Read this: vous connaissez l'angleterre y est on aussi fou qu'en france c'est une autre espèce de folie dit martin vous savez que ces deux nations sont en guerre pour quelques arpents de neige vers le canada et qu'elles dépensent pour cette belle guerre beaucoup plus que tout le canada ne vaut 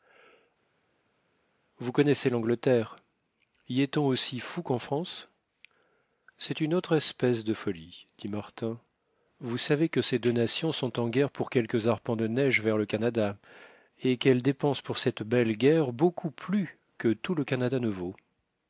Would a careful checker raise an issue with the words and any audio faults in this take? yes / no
no